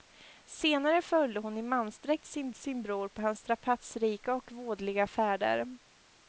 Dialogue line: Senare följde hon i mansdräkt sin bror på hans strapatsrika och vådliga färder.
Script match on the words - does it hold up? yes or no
no